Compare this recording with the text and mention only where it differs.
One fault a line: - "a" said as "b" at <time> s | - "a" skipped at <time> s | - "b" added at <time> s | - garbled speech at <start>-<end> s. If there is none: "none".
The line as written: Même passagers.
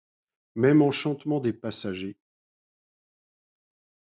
- "enchantement des" added at 0.8 s